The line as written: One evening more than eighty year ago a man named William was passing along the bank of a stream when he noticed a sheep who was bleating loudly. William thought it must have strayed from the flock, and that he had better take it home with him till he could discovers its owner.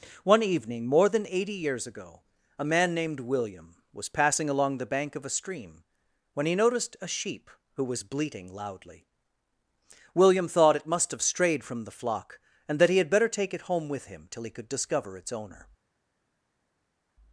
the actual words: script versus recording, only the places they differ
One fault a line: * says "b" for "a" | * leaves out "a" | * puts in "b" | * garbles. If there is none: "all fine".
* says "years" for "year"
* says "discover" for "discovers"